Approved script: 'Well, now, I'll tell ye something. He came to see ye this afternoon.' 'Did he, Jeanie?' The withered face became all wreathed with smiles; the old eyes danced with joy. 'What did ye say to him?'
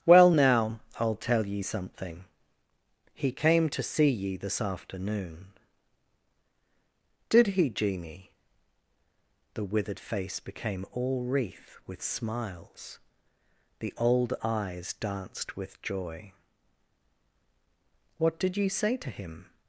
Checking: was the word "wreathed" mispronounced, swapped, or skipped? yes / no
yes